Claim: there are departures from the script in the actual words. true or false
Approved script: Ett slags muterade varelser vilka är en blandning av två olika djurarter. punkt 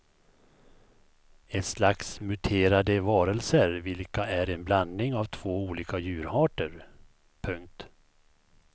false